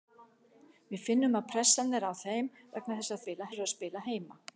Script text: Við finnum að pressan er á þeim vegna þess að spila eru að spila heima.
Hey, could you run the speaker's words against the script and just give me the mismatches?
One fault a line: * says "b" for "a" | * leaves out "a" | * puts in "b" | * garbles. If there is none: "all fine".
all fine